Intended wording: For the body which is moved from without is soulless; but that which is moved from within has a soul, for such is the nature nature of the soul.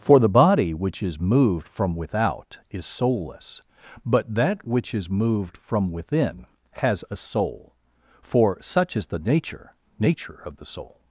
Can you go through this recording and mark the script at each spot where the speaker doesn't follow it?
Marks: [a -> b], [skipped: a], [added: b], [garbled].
For the body which is moved from without is soulless; but that which is moved from within has a soul, for such is the nature nature of the soul.